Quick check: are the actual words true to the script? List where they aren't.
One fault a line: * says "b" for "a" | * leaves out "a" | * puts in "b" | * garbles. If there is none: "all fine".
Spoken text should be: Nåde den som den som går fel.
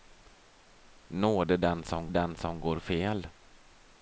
all fine